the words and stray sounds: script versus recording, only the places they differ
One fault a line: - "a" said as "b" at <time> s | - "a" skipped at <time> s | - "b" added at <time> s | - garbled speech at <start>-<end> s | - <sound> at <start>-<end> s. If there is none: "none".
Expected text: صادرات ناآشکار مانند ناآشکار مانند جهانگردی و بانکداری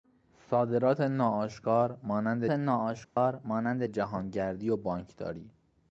- dropout at 3.0-3.2 s